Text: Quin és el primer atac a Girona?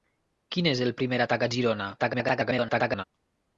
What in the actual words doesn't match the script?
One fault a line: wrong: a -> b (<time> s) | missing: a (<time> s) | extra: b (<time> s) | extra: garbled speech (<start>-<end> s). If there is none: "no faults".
extra: garbled speech (2.0-3.0 s)